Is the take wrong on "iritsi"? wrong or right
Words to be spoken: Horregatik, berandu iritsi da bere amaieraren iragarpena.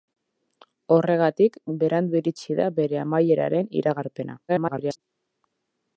right